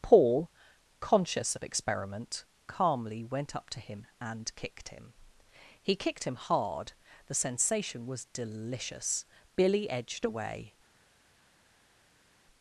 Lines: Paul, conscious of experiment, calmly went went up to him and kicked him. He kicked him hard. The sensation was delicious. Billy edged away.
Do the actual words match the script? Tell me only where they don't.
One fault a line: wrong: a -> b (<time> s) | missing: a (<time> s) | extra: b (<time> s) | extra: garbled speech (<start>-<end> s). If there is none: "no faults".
missing: went (3.5 s)